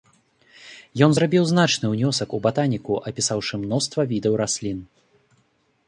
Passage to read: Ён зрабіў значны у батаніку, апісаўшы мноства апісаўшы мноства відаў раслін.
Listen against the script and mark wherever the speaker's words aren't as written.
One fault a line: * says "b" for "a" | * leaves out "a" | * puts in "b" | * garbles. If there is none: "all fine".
* puts in "ўнёсак"
* leaves out "апісаўшы мноства"